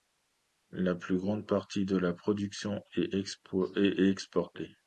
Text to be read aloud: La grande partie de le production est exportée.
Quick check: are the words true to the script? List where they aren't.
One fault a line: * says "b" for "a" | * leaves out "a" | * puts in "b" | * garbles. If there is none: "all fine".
* puts in "plus"
* says "la" for "le"